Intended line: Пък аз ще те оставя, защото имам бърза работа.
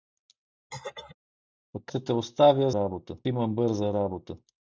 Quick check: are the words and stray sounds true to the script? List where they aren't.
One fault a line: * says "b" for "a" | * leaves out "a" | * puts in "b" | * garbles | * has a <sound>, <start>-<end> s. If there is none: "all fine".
* has a throat clearing, 0.7-1.2 s
* leaves out "аз"
* says "работа" for "защото"